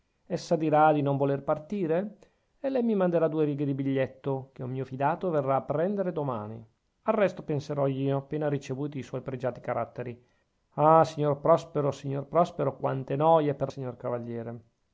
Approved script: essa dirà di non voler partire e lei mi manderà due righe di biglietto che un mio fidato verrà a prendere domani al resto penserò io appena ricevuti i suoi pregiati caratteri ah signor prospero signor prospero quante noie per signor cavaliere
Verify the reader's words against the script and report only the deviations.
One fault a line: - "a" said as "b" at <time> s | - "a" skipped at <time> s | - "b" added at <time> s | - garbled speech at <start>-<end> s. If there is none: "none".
none